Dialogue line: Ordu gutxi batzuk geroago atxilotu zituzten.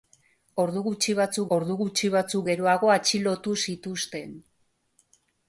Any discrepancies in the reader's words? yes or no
yes